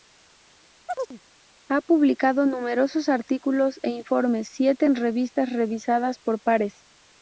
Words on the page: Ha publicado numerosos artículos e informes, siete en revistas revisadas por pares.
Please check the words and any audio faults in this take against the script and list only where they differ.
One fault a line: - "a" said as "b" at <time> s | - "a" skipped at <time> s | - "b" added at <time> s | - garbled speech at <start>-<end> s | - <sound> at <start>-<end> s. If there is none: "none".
- chirp at 0.9-1.2 s